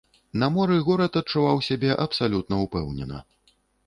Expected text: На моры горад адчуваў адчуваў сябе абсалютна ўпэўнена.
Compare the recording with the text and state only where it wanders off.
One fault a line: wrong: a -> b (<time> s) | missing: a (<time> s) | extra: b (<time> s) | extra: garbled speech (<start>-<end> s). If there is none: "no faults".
missing: адчуваў (1.6 s)